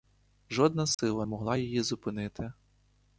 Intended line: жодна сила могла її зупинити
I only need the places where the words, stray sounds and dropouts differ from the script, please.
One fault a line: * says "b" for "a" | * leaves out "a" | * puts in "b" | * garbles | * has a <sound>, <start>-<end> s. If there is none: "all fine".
* has a dropout, 0.9-1.0 s